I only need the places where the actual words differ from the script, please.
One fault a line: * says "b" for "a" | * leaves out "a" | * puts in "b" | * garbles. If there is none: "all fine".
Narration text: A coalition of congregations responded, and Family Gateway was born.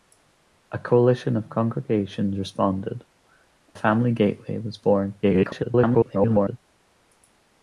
* leaves out "and"
* garbles